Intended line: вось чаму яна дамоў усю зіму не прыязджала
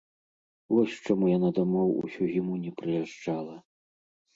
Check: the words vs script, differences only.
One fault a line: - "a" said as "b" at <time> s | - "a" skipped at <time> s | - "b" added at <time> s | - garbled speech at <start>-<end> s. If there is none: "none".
none